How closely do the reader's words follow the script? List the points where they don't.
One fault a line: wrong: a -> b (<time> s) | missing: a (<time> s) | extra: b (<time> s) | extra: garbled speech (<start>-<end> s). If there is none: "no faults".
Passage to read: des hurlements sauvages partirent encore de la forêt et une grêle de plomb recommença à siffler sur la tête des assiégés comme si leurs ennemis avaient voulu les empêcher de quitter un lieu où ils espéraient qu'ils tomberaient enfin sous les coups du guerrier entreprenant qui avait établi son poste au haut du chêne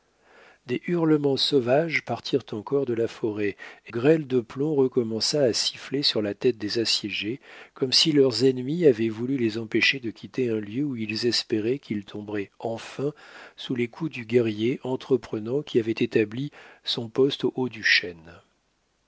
missing: une (3.9 s)